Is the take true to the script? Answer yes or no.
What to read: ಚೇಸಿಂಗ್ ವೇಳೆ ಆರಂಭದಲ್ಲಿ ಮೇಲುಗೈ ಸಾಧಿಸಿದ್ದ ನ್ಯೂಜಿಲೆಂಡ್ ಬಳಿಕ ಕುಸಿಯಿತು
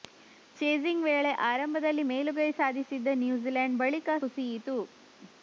yes